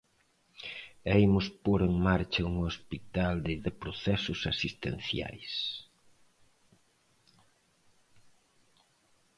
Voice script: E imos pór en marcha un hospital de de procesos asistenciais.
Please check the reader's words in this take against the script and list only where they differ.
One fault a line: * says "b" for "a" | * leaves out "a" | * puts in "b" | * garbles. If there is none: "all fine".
all fine